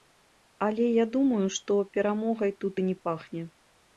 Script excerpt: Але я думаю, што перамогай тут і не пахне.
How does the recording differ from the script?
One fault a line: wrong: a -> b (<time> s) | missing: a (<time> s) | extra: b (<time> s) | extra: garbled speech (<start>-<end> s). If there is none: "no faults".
no faults